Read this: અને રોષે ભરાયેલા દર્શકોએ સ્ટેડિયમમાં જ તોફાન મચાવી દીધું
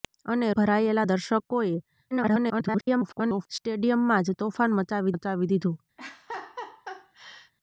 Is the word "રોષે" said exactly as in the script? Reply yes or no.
no